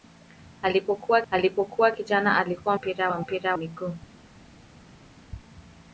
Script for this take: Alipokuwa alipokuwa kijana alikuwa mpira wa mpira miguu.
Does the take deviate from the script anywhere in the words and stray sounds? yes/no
no